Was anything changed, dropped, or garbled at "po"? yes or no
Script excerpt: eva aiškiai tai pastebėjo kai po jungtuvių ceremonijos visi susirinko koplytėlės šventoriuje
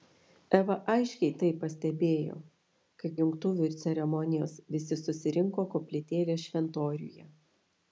yes